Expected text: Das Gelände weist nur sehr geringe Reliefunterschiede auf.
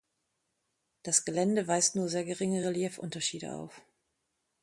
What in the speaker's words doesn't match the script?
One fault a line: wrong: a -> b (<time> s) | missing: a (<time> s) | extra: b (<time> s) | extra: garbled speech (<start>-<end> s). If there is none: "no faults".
no faults